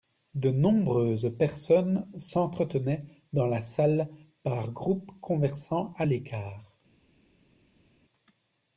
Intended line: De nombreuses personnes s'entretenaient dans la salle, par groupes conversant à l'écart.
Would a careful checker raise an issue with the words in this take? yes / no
no